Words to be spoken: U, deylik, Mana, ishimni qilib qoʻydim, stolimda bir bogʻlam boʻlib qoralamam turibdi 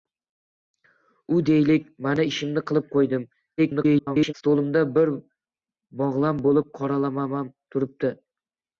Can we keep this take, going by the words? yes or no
no